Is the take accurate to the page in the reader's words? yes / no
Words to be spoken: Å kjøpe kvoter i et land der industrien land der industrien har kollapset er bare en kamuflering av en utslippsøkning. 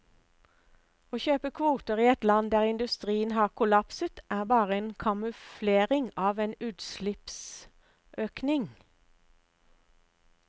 no